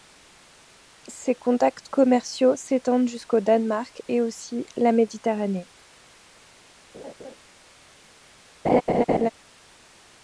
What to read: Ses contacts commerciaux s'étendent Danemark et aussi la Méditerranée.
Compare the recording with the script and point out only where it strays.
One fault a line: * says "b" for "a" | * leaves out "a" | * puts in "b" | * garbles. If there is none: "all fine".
* puts in "jusqu'au"